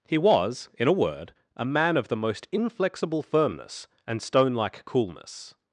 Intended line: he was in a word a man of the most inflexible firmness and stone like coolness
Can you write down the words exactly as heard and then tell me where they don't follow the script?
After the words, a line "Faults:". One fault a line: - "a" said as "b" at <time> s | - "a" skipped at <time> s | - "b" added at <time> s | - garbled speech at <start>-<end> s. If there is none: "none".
he was in a word a man of the most inflexible firmness and stone like coolness
Faults:
none